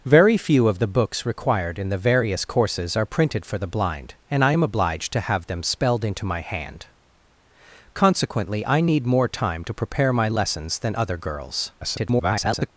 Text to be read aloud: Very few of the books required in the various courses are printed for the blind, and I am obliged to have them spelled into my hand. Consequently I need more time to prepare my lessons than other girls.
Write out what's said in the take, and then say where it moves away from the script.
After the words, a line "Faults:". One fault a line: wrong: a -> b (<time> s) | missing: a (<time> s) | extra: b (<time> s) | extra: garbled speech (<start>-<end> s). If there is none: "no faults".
Very few of the books required in the various courses are printed for the blind, and I am obliged to have them spelled into my hand. Consequently I need more time to prepare my lessons than other girls. [garbled]
Faults:
extra: garbled speech (11.8-12.7 s)